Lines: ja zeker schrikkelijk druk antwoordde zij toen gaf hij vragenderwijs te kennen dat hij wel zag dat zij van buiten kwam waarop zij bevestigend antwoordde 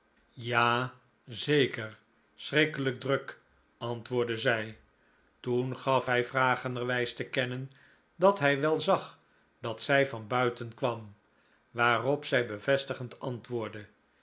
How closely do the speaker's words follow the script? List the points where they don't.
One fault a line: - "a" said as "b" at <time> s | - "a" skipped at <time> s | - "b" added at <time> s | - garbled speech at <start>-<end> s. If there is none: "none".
none